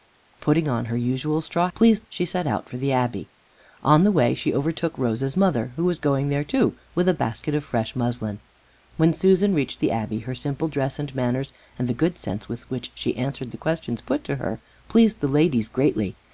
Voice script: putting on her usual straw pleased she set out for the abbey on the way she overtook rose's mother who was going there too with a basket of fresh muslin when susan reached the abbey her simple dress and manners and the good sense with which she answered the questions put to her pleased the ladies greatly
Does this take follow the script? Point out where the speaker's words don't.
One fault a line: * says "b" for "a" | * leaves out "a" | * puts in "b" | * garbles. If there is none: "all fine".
all fine